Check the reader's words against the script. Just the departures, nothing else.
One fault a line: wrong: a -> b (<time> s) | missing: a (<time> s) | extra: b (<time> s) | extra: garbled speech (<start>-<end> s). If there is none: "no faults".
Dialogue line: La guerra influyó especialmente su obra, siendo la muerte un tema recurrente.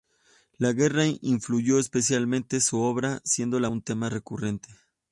missing: muerte (3.7 s)